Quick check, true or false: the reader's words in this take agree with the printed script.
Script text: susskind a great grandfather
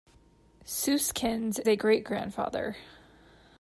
true